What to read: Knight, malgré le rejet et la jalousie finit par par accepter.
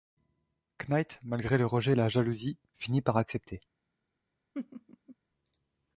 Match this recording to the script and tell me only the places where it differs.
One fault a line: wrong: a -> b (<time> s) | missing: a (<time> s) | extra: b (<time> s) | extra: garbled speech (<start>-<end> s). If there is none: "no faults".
missing: par (3.2 s)